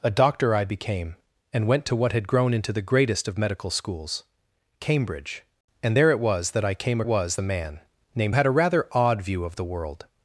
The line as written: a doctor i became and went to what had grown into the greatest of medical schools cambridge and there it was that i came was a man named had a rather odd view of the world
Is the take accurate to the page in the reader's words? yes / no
yes